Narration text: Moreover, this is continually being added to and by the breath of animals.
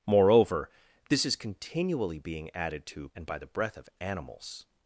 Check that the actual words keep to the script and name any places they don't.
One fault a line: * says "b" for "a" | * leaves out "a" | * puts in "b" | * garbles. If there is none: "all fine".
all fine